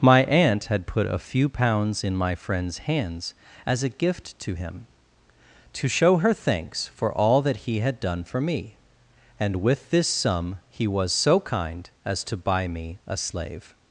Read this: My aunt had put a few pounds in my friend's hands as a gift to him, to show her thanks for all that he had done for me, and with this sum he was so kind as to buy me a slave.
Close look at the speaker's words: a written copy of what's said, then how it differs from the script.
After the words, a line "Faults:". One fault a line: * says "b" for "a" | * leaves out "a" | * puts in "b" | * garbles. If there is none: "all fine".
My aunt had put a few pounds in my friend's hands as a gift to him, to show her thanks for all that he had done for me, and with this sum he was so kind as to buy me a slave.
Faults:
all fine